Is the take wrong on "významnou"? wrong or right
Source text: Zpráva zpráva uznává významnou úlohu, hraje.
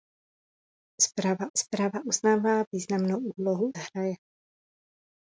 right